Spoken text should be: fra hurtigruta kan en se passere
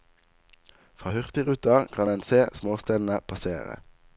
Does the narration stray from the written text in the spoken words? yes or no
yes